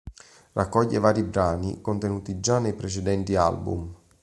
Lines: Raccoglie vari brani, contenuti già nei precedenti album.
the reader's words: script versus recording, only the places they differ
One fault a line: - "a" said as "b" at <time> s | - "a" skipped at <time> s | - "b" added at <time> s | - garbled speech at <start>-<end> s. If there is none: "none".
none